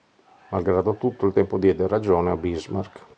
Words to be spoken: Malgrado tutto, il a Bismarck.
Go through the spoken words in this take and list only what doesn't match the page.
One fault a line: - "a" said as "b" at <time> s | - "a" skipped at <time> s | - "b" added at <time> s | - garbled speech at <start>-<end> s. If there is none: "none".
- "tempo diede ragione" added at 1.3 s